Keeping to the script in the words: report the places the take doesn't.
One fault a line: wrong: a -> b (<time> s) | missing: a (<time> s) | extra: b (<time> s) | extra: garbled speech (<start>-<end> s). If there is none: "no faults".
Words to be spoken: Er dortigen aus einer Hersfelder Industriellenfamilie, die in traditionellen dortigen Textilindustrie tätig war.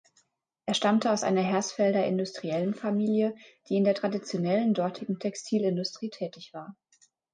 wrong: dortigen -> stammte (0.7 s)
extra: der (3.8 s)